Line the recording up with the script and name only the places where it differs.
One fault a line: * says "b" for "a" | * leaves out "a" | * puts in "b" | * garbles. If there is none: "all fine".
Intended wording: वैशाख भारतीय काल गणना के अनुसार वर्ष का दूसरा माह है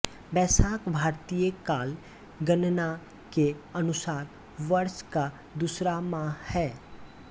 all fine